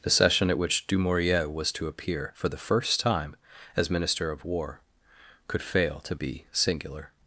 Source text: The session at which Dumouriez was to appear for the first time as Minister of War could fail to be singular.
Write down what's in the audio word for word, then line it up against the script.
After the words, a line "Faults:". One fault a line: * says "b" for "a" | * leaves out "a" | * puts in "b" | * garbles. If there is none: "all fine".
The session at which Dumouriez was to appear for the first time as Minister of War could fail to be singular.
Faults:
all fine